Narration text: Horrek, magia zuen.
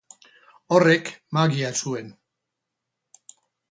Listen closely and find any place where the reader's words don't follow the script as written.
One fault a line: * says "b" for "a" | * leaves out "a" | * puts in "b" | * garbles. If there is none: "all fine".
all fine